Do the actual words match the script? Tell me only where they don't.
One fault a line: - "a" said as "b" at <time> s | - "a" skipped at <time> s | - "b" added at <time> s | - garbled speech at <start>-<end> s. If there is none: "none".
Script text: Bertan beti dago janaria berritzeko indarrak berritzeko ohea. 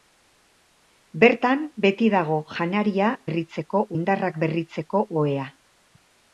none